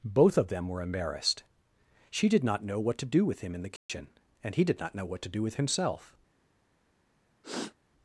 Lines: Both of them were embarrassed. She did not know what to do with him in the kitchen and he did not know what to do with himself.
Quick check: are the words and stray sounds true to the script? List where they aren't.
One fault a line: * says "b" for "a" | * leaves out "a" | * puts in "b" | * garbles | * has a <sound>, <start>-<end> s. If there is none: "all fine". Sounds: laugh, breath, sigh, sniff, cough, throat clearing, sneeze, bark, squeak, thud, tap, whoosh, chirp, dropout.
* has a dropout, 3.8-3.9 s
* has a sniff, 7.4-7.8 s